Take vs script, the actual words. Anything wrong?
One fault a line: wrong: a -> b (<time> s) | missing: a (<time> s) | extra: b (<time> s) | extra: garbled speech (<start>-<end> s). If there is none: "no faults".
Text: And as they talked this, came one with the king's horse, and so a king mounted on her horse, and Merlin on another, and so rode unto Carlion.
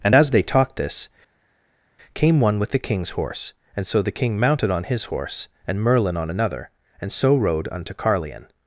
wrong: a -> the (4.0 s)
wrong: her -> his (4.8 s)